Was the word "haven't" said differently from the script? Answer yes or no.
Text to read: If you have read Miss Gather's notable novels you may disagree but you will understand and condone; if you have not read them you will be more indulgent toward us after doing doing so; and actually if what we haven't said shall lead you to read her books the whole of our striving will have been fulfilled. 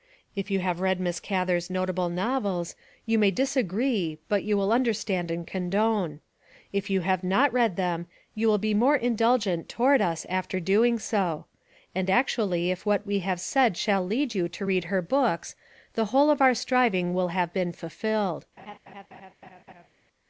yes